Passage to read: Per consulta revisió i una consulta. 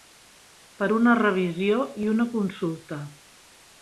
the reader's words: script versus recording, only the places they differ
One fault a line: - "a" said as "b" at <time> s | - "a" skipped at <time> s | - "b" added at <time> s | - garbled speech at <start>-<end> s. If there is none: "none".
- "consulta" said as "una" at 1.0 s